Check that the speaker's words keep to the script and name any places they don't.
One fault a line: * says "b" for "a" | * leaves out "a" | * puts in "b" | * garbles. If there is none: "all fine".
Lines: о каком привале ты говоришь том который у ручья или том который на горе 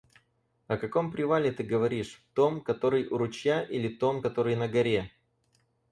all fine